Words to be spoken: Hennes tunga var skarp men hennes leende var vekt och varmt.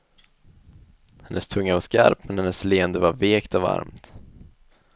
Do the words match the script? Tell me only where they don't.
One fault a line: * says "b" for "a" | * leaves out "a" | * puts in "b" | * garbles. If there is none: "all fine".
all fine